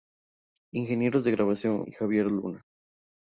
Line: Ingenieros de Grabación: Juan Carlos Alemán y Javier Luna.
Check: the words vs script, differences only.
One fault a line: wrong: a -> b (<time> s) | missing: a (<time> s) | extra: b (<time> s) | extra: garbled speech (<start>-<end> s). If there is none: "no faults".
missing: Juan Carlos Alemán (1.9 s)